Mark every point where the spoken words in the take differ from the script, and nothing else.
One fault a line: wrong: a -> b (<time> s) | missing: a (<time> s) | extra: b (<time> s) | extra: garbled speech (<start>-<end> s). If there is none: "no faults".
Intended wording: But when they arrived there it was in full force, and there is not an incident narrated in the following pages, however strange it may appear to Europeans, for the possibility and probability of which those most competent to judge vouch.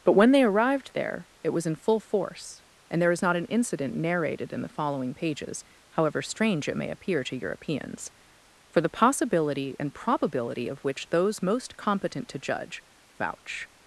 no faults